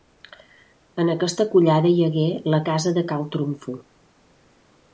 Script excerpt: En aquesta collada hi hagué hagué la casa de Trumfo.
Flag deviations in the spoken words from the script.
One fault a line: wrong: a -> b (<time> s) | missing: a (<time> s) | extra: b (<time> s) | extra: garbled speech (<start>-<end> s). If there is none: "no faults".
missing: hagué (2.2 s)
extra: Cal (3.1 s)